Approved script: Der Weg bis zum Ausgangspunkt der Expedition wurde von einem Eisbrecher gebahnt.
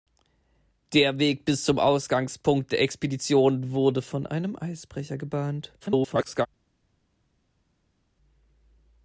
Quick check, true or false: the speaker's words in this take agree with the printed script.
false